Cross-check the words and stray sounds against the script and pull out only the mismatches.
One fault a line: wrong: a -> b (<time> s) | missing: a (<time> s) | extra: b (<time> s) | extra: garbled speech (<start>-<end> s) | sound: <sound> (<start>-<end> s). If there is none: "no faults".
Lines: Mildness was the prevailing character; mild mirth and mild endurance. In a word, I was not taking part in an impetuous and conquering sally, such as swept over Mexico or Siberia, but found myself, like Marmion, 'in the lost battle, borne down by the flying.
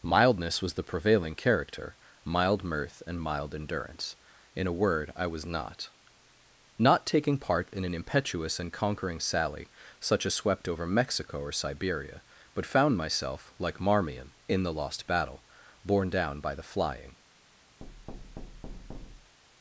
extra: not (6.8 s)
sound: thud (17.8-19.4 s)